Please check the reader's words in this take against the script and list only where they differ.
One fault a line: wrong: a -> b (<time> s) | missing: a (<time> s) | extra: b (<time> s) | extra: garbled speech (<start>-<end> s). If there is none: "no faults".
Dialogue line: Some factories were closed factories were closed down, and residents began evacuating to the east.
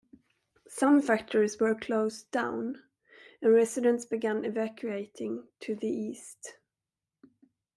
missing: factories were closed (2.3 s)